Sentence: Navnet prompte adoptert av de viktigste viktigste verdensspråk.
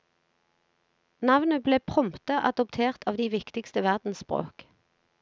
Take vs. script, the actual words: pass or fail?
fail